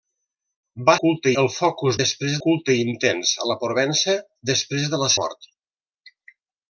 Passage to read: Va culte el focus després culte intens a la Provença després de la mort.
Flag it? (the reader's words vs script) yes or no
no